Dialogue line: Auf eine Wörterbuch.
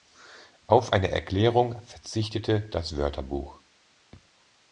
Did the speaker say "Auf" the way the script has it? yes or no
yes